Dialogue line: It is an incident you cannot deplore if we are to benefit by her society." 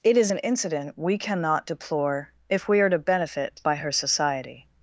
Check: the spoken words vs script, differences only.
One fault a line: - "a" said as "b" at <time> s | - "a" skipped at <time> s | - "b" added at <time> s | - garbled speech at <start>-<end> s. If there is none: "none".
- "you" said as "we" at 1.0 s